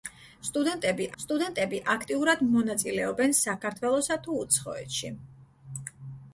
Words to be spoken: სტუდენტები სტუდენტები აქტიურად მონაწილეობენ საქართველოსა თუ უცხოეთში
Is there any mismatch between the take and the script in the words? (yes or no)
no